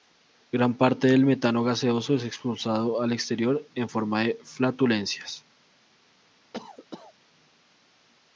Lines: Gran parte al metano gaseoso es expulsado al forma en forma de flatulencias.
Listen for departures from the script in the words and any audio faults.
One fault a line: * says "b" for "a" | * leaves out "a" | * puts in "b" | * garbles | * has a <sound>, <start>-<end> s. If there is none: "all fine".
* says "del" for "al"
* says "exterior" for "forma"
* has a cough, 6.5-7.1 s